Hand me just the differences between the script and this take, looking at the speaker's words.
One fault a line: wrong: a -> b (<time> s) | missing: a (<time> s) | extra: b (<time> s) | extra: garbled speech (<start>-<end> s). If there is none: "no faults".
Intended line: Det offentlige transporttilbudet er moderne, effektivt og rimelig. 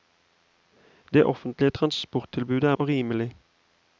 missing: moderne effektivt (2.8 s)